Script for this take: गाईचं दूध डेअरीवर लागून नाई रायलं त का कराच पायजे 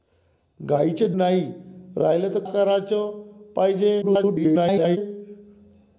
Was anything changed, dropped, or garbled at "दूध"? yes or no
yes